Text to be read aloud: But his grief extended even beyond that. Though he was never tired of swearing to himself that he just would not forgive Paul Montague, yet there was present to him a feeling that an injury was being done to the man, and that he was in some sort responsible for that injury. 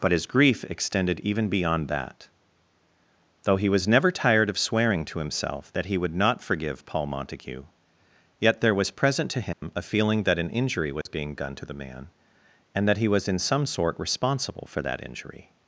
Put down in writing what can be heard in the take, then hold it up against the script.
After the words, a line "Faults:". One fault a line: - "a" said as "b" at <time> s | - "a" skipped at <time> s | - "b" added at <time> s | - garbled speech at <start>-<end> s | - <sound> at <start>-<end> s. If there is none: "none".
But his grief extended even beyond that. Though he was never tired of swearing to himself that he would not forgive Paul Montague, yet there was present to him a feeling that an injury was being done to the man, and that he was in some sort responsible for that injury.
Faults:
- "just" skipped at 6.0 s
- dropout at 9.5-9.6 s
- dropout at 11.0-11.1 s